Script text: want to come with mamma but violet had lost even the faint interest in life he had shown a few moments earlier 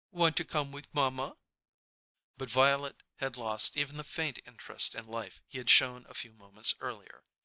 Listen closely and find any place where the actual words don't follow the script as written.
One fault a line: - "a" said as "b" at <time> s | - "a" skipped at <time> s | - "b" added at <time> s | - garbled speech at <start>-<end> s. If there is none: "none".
none